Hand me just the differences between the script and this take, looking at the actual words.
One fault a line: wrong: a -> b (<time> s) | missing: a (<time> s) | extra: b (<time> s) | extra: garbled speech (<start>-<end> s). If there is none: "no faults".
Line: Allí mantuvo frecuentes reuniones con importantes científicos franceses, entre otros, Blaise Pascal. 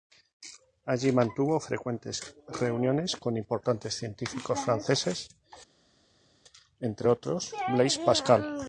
no faults